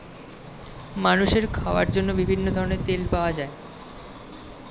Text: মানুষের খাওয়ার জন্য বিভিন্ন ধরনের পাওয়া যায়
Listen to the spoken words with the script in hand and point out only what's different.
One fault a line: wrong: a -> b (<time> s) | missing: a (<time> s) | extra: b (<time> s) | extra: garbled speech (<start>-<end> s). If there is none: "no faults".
extra: তেল (2.9 s)